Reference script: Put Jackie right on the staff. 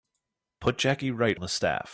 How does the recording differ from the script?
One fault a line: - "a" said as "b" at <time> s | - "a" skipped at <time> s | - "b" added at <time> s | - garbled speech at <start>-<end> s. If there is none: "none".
- "on" skipped at 1.4 s